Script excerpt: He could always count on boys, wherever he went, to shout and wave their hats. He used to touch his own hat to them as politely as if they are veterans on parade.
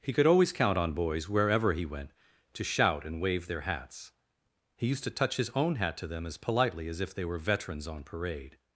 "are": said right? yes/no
no